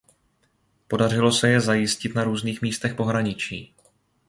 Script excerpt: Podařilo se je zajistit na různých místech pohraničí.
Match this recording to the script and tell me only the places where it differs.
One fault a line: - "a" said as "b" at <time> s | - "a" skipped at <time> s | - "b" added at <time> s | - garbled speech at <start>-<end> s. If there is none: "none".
none